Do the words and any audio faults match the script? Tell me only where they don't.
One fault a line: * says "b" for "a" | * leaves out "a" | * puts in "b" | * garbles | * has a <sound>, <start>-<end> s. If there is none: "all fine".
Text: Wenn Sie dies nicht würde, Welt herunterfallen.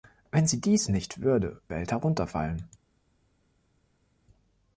all fine